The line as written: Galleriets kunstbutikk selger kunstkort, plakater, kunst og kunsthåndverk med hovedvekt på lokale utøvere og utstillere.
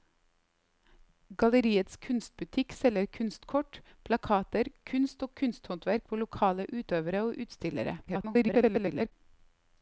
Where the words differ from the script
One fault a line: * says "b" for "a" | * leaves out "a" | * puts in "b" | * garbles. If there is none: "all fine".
* leaves out "med hovedvekt"
* garbles